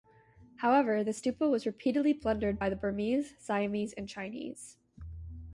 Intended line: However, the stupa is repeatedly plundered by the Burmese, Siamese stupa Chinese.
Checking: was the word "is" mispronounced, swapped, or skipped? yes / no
yes